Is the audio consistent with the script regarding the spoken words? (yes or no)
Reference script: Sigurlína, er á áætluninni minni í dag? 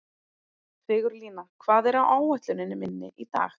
no